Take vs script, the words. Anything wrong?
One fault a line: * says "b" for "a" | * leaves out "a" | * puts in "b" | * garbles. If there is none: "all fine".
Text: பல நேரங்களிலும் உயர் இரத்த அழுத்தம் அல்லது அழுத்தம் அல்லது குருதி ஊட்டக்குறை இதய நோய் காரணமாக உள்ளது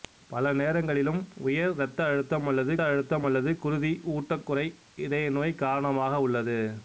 all fine